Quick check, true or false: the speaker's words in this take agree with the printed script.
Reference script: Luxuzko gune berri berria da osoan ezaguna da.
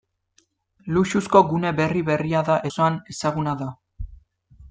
true